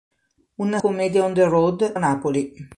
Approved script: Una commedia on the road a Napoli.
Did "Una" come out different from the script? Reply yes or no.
no